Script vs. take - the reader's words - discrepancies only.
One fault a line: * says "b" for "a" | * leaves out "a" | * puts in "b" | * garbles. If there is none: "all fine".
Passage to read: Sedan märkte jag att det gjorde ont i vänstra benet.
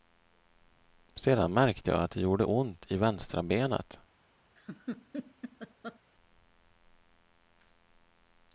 all fine